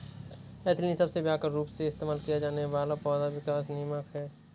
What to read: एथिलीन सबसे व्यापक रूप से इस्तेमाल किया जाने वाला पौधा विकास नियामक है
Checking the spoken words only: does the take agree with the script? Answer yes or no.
yes